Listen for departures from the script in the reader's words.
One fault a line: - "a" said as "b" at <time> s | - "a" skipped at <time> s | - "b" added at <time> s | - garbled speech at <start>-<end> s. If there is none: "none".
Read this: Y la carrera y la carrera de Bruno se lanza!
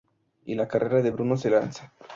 - "y la carrera" skipped at 1.0 s